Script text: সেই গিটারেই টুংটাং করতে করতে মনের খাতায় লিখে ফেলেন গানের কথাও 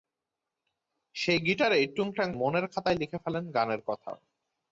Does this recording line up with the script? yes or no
no